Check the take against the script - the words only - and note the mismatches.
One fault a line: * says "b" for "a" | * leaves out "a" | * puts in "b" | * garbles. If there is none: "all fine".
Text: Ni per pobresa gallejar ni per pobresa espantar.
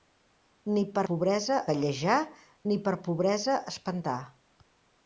all fine